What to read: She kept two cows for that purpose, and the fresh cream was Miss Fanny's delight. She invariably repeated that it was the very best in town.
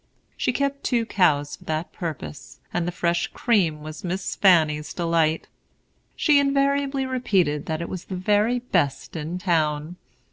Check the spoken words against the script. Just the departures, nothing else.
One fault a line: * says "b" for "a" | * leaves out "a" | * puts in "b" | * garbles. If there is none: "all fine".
all fine